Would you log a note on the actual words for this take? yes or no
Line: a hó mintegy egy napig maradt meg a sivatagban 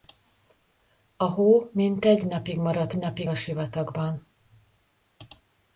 yes